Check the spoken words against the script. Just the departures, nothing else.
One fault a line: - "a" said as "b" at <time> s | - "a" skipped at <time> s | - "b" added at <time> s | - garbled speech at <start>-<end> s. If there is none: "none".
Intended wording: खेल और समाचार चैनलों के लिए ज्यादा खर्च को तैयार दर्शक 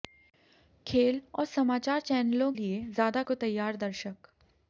- "के" skipped at 2.5 s
- "खर्च" skipped at 3.2 s